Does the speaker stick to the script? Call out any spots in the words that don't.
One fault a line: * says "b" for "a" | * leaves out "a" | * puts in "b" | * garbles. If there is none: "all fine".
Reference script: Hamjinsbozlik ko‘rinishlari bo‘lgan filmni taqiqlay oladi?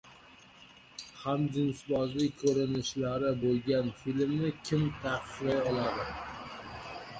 * puts in "kim"